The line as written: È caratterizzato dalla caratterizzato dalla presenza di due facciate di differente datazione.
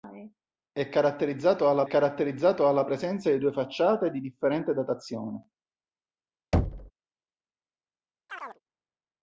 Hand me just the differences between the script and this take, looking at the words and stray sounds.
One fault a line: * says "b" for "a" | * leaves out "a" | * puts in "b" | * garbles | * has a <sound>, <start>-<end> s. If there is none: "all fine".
* has a thud, 6.5-6.9 s
* has a chirp, 8.3-8.6 s